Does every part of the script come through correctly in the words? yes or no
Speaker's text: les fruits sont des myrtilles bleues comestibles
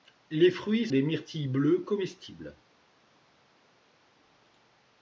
no